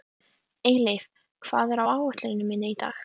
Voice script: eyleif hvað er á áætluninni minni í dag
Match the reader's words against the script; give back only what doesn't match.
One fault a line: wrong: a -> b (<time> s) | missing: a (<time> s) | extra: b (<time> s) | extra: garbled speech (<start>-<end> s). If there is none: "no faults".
no faults